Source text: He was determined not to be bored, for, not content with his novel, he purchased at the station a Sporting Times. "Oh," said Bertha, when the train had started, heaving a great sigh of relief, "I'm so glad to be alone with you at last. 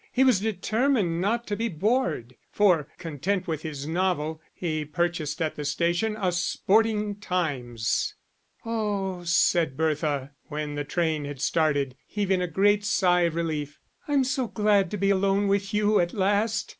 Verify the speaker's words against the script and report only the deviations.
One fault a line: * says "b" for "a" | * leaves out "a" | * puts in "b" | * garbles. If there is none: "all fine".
* leaves out "not"